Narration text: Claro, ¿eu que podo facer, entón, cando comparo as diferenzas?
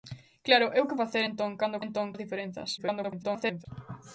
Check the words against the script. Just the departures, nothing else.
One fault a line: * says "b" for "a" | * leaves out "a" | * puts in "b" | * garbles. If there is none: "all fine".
* leaves out "podo"
* says "entón" for "comparo"
* garbles